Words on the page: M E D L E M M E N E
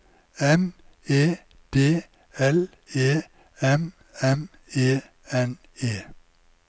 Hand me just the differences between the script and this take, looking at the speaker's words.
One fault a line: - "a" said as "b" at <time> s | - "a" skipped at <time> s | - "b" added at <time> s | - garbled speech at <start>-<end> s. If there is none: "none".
none